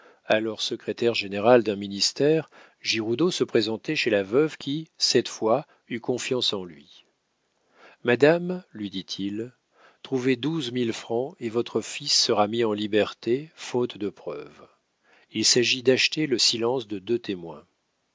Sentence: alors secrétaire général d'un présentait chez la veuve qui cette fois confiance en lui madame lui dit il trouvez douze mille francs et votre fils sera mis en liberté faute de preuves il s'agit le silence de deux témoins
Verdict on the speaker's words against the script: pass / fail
fail